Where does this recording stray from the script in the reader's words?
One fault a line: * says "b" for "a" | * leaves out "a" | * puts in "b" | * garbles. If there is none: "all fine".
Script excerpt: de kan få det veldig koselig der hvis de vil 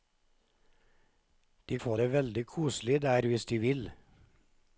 * leaves out "kan"